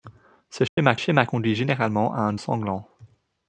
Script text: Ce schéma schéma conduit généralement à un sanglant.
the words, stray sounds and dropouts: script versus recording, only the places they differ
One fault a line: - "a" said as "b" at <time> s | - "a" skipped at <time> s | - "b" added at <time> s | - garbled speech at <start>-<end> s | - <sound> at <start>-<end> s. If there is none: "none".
- dropout at 0.7-0.8 s